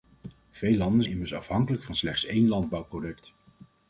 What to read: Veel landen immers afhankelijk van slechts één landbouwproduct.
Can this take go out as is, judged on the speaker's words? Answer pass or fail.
pass